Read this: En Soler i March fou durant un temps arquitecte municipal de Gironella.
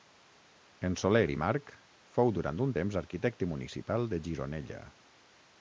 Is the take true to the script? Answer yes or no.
yes